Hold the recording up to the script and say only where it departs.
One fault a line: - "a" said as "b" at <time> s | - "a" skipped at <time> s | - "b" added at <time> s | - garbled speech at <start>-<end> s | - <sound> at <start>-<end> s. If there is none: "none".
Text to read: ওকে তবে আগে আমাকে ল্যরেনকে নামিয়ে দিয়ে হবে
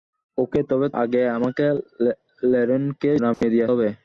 - dropout at 3.3-3.4 s